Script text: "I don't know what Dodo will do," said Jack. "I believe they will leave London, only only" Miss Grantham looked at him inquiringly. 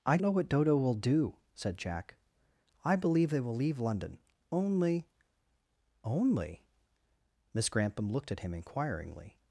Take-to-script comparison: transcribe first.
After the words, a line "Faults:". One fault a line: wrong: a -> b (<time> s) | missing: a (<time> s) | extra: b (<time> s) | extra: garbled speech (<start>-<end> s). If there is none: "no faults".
"I know what Dodo will do," said Jack. "I believe they will leave London, only only" Miss Grantham looked at him inquiringly.
Faults:
missing: don't (0.2 s)